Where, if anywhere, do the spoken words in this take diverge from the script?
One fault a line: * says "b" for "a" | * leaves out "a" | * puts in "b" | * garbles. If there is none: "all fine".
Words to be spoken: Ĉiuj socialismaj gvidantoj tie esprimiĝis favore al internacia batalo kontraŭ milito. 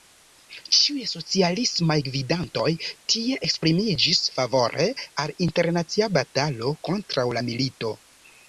* puts in "la"